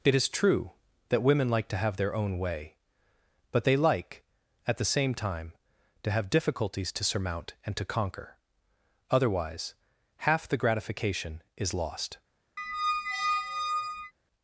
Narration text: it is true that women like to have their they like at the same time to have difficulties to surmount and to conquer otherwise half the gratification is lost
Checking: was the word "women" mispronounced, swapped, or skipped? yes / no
no